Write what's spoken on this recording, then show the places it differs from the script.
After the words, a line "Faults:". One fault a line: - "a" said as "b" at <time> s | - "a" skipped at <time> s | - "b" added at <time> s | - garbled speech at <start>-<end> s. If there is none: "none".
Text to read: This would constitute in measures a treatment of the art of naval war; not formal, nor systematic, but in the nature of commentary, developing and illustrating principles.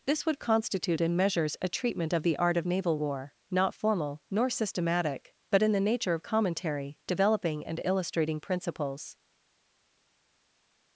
This would constitute in measures a treatment of the art of naval war; not formal, nor systematic, but in the nature of commentary, developing and illustrating principles.
Faults:
none